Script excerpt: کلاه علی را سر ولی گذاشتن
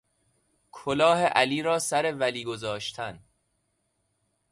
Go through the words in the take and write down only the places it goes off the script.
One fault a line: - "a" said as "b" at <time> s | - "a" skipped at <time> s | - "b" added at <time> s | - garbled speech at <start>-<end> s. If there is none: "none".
none